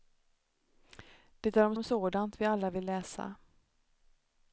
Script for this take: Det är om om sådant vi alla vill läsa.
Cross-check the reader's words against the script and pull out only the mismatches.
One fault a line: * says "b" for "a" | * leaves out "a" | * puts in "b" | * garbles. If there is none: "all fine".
all fine